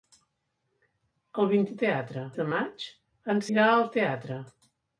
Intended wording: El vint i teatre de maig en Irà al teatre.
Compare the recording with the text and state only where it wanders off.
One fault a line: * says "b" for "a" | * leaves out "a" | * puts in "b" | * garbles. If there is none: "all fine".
all fine